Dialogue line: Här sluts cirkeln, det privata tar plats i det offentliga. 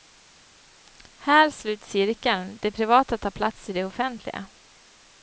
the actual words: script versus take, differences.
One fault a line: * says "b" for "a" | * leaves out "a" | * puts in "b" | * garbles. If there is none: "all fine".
all fine